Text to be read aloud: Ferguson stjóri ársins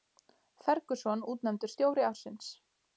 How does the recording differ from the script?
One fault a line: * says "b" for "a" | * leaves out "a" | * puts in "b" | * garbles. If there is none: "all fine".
* puts in "útnefndur"